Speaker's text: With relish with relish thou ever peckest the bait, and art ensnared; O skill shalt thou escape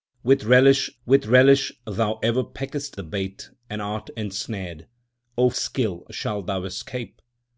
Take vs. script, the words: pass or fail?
pass